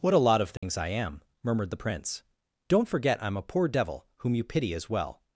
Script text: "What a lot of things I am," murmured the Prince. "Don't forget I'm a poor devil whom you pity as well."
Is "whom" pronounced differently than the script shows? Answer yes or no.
no